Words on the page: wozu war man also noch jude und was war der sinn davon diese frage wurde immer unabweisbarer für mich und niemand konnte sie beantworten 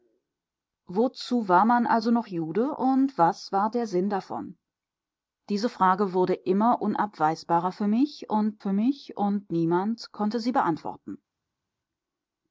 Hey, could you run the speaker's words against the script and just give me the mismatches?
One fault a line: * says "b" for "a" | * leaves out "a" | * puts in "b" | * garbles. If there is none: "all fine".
* puts in "für mich und"